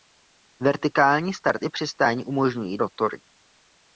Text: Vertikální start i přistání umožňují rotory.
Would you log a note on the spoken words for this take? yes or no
no